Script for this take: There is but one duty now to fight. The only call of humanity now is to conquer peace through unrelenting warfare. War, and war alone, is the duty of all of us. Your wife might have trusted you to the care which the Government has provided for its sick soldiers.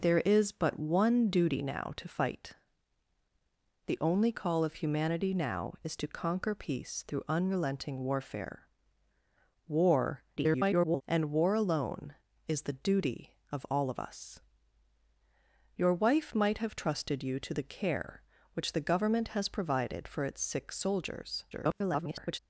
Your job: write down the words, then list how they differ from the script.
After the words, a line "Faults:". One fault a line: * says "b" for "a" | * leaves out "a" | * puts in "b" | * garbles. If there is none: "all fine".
There is but one duty now to fight. The only call of humanity now is to conquer peace through unrelenting warfare. War, [garbled] and war alone, is the duty of all of us. Your wife might have trusted you to the care which the Government has provided for its sick soldiers. [garbled]
Faults:
* garbles
* garbles